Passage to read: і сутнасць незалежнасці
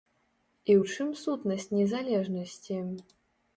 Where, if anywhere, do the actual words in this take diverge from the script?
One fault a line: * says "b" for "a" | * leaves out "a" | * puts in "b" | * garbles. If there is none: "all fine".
* puts in "ў чым"